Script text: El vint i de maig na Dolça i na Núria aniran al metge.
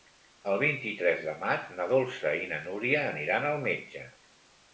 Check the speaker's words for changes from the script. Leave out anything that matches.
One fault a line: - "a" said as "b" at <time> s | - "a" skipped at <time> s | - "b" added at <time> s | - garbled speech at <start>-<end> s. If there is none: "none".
- "tres" added at 1.0 s